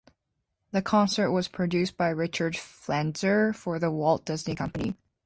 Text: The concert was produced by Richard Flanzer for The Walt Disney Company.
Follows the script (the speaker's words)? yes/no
yes